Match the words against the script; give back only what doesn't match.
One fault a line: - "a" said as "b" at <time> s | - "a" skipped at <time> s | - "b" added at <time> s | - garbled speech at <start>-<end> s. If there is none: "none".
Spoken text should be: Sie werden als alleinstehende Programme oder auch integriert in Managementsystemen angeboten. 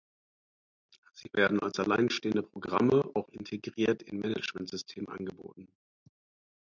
- "oder" skipped at 3.1 s